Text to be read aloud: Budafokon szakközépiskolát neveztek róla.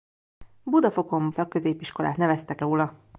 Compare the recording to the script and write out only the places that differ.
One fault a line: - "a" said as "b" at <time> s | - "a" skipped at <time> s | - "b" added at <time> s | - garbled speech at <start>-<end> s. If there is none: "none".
none